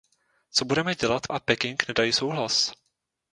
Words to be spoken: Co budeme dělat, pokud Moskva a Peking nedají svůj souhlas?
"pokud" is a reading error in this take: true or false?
true